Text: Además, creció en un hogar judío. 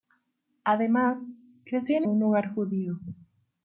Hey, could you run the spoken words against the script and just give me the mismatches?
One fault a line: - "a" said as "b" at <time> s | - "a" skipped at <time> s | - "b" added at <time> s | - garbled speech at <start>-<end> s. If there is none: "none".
none